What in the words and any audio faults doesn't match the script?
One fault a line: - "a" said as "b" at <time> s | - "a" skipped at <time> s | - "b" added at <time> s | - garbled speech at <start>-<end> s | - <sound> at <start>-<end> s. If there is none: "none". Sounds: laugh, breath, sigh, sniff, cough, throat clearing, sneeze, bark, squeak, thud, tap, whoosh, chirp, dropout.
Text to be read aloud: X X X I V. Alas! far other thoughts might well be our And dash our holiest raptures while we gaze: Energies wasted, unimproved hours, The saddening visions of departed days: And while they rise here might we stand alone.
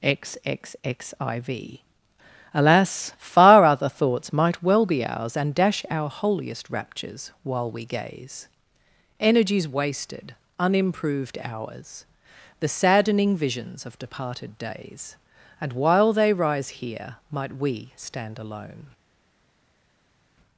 - "our" said as "ours" at 5.0 s